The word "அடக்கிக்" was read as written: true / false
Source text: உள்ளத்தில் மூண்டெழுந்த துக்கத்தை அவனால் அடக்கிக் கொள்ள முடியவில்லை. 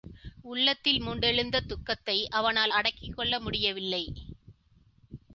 true